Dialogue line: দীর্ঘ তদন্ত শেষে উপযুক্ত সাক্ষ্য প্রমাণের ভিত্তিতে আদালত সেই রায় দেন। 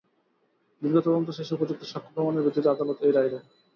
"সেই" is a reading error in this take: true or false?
true